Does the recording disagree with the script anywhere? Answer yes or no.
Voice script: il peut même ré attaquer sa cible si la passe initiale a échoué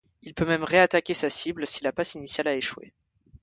no